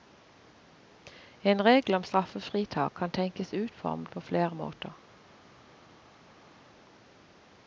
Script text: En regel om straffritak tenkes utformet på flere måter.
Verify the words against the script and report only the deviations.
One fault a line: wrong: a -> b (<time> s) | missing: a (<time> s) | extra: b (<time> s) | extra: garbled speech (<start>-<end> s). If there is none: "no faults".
extra: kan (2.9 s)